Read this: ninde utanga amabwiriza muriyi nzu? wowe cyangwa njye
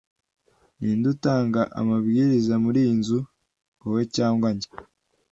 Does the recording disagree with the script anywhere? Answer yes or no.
no